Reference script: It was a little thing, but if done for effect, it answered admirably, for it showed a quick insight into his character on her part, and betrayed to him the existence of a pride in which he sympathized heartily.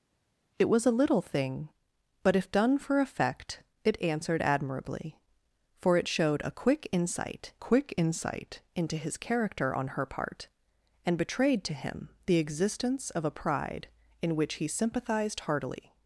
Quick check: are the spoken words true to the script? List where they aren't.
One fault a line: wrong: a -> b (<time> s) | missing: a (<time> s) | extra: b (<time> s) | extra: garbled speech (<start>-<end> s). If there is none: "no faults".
extra: quick insight (7.6 s)